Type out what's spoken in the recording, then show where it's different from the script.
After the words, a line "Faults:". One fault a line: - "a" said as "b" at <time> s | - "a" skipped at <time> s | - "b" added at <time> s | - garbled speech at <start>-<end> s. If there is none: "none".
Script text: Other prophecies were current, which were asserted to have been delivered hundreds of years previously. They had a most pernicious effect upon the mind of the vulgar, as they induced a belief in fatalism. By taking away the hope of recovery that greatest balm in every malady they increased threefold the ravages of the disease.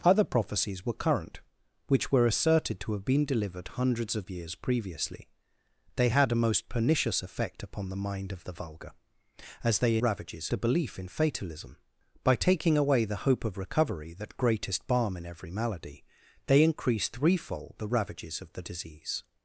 Other prophecies were current, which were asserted to have been delivered hundreds of years previously. They had a most pernicious effect upon the mind of the vulgar, as they ravages a belief in fatalism. By taking away the hope of recovery that greatest balm in every malady they increased threefold the ravages of the disease.
Faults:
- "induced" said as "ravages" at 10.0 s